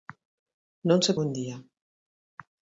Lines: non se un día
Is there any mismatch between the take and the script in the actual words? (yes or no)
no